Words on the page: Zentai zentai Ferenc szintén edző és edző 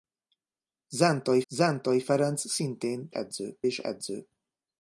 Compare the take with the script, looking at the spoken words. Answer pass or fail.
pass